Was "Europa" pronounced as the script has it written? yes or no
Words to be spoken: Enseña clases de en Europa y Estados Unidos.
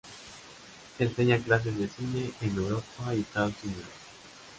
yes